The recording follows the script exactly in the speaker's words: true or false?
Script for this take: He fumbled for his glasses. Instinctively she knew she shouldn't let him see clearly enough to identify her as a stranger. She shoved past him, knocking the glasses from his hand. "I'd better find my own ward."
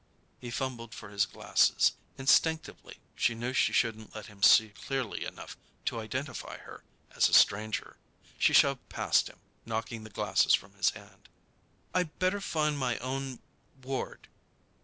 true